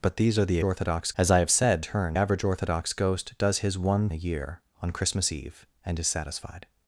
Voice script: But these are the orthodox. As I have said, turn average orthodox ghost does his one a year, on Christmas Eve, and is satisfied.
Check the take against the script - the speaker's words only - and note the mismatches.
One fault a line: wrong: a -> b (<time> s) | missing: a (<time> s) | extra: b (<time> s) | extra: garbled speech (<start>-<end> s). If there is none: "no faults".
no faults